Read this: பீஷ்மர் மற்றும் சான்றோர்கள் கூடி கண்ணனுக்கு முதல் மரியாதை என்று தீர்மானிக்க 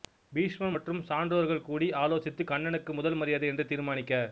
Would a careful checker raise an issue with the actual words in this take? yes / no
yes